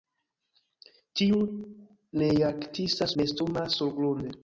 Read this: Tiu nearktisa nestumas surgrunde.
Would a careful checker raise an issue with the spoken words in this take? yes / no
no